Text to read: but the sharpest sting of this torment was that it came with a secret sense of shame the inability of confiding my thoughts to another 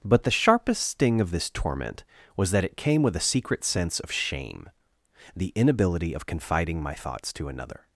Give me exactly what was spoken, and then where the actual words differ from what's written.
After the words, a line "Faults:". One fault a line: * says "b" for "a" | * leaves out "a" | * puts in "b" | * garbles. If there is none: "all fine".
but the sharpest sting of this torment was that it came with a secret sense of shame the inability of confiding my thoughts to another
Faults:
all fine